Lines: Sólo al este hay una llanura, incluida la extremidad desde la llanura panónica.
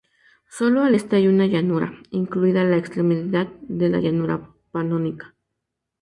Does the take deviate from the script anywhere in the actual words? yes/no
yes